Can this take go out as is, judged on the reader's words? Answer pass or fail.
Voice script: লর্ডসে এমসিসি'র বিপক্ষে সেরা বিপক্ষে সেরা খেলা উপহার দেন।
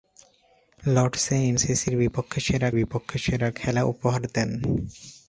pass